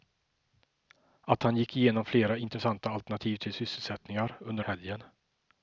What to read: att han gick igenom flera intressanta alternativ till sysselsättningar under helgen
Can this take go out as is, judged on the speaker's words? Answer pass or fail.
pass